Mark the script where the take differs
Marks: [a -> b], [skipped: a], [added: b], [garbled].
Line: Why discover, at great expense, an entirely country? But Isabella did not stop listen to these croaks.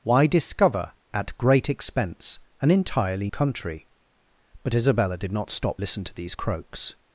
Why discover, at great expense, an entirely country? But Isabella did not stop listen to these croaks.